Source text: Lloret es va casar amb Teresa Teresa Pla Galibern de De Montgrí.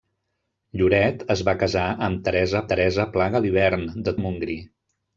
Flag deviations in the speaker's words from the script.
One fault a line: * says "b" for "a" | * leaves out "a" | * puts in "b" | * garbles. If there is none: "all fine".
all fine